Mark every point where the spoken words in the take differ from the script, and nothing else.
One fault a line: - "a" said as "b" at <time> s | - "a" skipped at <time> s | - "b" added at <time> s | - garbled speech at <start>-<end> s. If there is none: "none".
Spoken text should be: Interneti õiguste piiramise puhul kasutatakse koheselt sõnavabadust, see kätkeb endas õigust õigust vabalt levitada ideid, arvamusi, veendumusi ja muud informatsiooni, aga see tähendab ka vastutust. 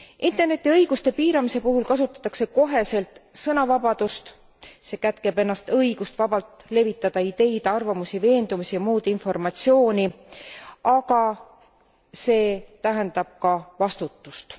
- "õigust" skipped at 6.2 s